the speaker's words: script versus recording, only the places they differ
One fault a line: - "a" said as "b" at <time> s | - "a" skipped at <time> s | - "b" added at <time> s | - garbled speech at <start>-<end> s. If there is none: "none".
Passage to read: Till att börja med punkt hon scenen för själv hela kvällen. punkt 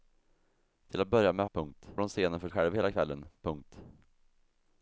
none